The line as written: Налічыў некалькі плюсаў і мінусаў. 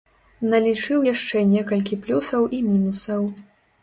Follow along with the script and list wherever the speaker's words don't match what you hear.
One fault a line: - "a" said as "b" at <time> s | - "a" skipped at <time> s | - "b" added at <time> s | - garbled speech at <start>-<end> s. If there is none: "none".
- "яшчэ" added at 1.1 s